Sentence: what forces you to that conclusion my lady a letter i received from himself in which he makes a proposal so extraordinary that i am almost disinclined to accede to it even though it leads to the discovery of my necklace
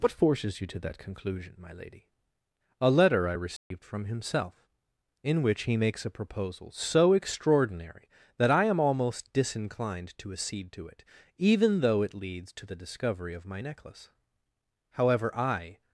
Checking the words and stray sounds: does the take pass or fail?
fail